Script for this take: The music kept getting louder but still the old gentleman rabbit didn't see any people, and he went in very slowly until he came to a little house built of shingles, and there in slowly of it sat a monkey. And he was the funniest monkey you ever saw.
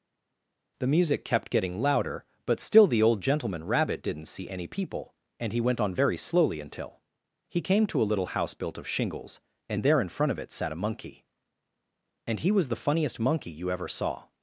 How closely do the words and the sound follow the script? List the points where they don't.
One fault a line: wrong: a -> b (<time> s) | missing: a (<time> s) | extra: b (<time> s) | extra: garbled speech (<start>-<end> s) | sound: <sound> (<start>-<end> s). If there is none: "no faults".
wrong: in -> on (5.8 s)
wrong: slowly -> front (10.1 s)